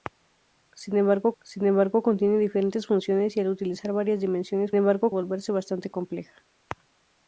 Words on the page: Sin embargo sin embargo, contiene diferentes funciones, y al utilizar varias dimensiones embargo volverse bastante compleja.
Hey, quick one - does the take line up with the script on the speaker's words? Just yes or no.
yes